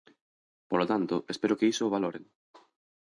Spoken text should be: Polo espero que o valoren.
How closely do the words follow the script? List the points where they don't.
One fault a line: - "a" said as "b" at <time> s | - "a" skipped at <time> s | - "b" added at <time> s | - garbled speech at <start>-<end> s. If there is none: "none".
- "tanto" added at 0.9 s
- "iso" added at 1.7 s